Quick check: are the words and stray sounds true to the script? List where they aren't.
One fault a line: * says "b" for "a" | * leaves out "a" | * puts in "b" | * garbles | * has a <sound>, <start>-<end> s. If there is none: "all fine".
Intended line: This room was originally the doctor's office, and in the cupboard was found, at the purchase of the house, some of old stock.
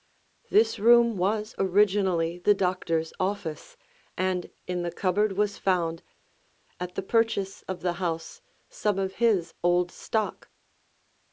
* puts in "his"